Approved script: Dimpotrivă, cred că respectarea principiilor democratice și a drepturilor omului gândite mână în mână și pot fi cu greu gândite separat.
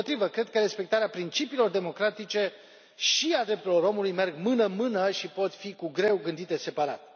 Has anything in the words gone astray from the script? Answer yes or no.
yes